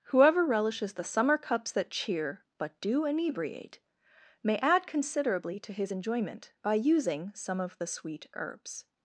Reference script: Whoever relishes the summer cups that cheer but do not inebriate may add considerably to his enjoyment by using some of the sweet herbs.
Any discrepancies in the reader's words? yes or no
yes